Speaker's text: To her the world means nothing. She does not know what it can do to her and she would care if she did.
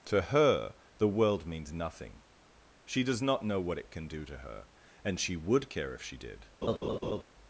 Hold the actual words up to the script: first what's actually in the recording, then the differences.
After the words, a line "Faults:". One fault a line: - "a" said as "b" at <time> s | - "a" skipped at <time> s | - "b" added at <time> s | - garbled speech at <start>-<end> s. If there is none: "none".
To her the world means nothing. She does not know what it can do to her and she would care if she did.
Faults:
none